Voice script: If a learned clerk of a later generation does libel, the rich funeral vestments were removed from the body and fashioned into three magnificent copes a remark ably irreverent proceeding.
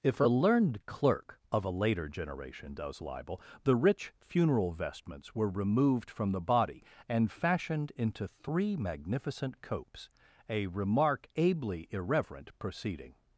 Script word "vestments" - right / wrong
right